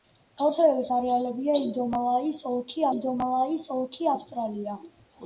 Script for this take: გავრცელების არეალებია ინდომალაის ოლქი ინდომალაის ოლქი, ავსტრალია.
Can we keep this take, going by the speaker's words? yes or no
yes